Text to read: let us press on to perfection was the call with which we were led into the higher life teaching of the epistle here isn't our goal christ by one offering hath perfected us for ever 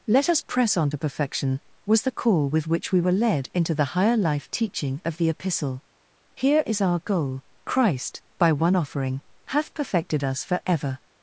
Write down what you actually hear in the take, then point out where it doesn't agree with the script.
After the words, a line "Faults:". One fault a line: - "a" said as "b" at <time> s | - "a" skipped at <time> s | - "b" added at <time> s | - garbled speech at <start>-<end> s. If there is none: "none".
let us press on to perfection was the call with which we were led into the higher life teaching of the epistle here is our goal christ by one offering hath perfected us for ever
Faults:
- "isn't" said as "is" at 6.6 s